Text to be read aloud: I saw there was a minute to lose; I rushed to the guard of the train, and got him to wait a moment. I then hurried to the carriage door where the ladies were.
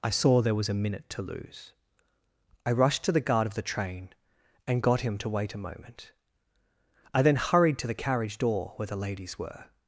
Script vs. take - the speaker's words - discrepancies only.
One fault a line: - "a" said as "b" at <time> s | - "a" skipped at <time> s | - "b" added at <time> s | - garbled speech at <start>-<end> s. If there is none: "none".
none